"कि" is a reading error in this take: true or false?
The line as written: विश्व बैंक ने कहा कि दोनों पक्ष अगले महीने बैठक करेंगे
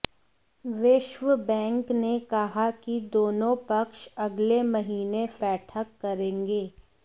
false